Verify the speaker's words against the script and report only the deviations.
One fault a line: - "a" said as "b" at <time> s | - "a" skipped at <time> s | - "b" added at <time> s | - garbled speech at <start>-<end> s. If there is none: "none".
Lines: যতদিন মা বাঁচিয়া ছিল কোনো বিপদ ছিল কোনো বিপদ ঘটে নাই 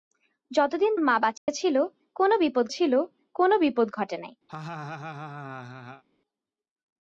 none